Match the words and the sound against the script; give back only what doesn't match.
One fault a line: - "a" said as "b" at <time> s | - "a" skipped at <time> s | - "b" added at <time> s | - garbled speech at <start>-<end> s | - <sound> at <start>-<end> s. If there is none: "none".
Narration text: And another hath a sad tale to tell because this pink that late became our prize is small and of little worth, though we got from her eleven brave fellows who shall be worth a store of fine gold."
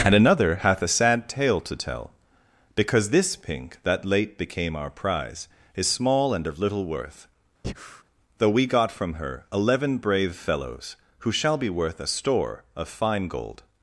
- breath at 7.6-8.0 s